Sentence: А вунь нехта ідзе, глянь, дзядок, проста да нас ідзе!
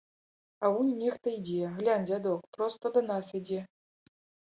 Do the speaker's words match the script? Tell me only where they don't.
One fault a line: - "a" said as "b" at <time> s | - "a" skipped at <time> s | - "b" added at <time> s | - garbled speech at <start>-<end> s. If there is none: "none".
none